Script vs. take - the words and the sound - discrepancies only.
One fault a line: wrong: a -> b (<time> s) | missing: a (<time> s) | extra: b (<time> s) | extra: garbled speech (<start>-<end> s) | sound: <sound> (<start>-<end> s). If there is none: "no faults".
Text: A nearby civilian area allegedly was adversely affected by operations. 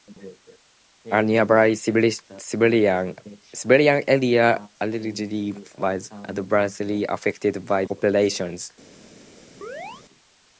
sound: chirp (9.6-10.0 s)